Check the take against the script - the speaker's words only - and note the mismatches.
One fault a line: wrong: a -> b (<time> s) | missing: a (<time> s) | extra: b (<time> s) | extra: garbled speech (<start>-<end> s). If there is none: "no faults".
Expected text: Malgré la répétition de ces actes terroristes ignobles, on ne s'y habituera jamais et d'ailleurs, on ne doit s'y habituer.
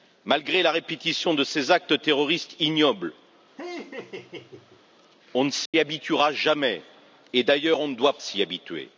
no faults